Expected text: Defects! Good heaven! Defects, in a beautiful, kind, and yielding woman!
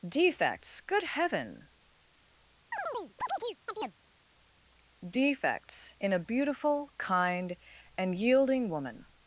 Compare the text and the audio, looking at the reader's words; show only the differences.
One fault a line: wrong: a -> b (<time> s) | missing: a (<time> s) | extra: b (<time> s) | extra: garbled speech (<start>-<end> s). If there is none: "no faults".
no faults